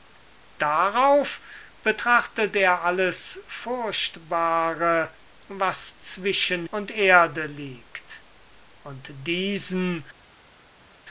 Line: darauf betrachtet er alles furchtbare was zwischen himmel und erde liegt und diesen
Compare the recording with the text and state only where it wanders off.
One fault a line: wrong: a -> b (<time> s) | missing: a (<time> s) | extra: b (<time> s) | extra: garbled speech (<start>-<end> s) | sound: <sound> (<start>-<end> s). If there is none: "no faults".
missing: himmel (6.7 s)